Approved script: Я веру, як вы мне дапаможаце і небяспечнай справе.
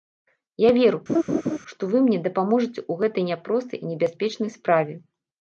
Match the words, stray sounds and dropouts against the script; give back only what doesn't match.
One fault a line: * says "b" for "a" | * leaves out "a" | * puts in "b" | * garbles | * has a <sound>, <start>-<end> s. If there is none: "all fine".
* has a laugh, 1.1-1.6 s
* says "што" for "як"
* puts in "ў гэтай няпростай"